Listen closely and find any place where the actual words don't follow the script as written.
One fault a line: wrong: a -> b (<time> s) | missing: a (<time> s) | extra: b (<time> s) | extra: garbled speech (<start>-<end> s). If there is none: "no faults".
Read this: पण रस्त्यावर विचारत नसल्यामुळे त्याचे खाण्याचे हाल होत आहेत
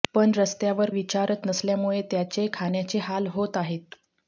no faults